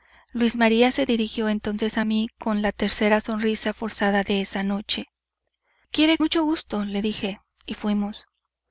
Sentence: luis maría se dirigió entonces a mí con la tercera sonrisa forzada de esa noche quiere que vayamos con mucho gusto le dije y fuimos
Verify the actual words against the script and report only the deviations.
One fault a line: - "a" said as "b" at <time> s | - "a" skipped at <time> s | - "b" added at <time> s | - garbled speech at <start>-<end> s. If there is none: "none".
- "que vayamos con" skipped at 6.2 s